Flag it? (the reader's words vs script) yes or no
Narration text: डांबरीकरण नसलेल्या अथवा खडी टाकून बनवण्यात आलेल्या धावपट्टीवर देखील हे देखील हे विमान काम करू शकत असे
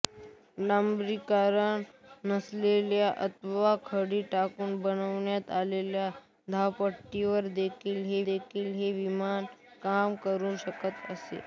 no